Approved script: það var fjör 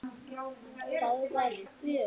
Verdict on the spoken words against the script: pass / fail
pass